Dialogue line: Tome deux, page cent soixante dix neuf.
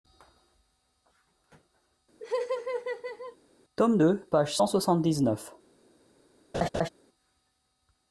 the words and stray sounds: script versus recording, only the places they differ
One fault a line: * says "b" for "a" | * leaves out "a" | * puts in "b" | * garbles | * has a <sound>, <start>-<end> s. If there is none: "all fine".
* has a laugh, 2.2-3.4 s
* has a laugh, 6.5-6.9 s